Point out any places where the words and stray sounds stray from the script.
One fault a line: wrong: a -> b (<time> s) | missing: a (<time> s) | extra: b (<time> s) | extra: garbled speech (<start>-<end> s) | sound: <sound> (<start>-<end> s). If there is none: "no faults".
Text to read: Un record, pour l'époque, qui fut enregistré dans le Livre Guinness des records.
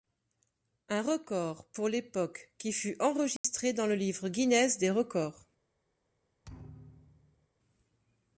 sound: dropout (3.4-3.4 s)
sound: thud (6.4-7.5 s)